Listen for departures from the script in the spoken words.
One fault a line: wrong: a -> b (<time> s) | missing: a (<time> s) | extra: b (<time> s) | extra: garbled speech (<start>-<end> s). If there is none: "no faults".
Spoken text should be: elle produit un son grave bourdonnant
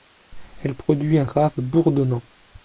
missing: son (1.3 s)